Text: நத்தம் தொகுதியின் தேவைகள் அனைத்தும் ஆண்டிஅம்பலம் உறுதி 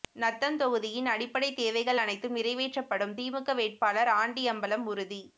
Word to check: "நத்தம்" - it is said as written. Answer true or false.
true